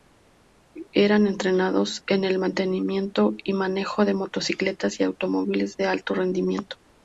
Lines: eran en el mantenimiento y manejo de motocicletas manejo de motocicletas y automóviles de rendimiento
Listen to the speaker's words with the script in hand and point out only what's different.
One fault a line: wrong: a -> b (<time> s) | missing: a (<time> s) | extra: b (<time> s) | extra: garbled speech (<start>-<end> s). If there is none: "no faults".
extra: entrenados (1.3 s)
missing: manejo de motocicletas (5.0 s)
extra: alto (5.8 s)